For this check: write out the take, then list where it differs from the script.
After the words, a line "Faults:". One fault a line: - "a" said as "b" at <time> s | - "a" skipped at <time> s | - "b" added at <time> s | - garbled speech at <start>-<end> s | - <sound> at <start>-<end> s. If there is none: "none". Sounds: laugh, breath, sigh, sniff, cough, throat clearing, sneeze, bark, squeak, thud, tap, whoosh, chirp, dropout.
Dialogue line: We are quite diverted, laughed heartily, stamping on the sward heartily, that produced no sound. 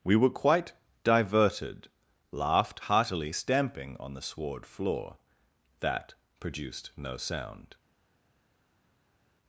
We were quite diverted, laughed heartily, stamping on the sward floor, that produced no sound.
Faults:
- "are" said as "were" at 0.1 s
- "heartily" said as "floor" at 4.6 s